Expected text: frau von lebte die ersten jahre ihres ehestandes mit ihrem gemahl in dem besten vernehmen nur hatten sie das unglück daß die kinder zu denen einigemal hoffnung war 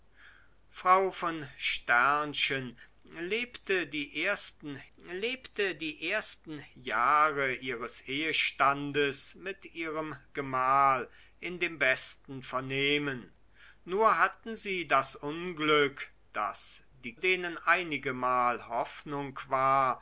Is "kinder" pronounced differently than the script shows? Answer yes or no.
yes